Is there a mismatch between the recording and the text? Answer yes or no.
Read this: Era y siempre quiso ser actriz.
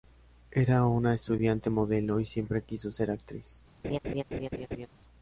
yes